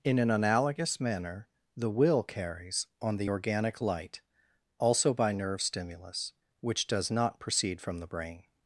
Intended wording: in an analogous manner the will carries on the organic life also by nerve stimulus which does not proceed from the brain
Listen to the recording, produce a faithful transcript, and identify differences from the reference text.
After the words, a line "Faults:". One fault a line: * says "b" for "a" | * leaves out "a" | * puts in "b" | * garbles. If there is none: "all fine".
in an analogous manner the will carries on the organic light also by nerve stimulus which does not proceed from the brain
Faults:
* says "light" for "life"